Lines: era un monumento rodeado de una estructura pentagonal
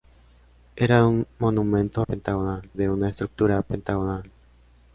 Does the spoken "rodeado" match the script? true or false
false